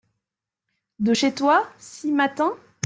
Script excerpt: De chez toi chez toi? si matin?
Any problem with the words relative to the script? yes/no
yes